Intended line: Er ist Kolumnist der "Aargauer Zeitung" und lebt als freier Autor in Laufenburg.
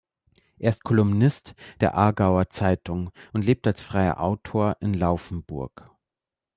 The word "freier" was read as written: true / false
true